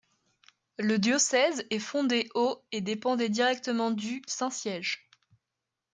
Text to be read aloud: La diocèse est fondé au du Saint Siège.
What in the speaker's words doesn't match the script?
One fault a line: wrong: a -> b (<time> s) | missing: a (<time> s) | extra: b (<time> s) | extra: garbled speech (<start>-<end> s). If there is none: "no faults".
wrong: La -> Le (0.8 s)
extra: et dépendait directement (2.7 s)